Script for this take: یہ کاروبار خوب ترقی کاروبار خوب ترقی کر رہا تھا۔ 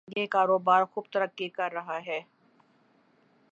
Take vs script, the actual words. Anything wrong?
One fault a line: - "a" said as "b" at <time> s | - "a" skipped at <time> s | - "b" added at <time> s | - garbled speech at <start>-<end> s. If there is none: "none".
- "کاروبار خوب ترقی" skipped at 1.5 s
- "تھا" said as "ہے" at 2.0 s